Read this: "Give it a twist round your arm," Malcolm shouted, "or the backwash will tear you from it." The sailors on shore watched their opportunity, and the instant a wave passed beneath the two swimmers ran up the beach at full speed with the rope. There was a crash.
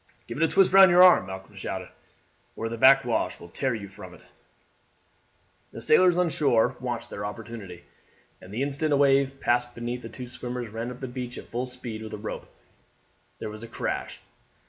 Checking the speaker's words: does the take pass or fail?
pass